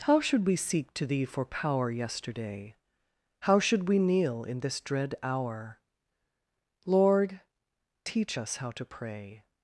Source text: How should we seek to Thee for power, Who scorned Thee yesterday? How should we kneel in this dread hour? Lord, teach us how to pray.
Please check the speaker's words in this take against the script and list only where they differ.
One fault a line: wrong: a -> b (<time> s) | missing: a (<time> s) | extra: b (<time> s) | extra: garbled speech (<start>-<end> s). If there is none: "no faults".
missing: Who scorned Thee (1.9 s)